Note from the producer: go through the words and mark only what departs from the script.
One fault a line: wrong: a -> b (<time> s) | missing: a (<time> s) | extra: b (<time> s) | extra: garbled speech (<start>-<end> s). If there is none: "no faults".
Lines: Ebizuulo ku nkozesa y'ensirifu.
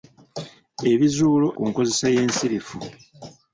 no faults